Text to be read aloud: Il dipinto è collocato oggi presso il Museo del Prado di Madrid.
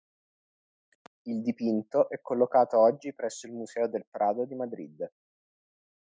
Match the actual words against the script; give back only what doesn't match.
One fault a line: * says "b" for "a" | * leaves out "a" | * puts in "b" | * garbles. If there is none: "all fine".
all fine